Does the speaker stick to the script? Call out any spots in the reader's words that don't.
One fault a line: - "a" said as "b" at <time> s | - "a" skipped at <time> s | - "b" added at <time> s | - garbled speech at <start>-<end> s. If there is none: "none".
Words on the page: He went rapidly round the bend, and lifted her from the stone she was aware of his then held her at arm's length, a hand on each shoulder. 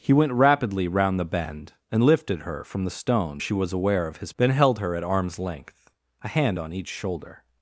none